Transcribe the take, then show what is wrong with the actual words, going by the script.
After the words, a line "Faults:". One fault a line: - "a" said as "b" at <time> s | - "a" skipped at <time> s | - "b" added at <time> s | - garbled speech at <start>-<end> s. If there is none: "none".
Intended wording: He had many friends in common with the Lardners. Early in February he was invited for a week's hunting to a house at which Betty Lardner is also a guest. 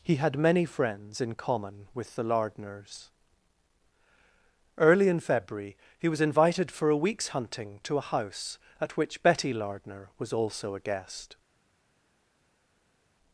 He had many friends in common with the Lardners. Early in February he was invited for a week's hunting to a house at which Betty Lardner was also a guest.
Faults:
- "is" said as "was" at 10.2 s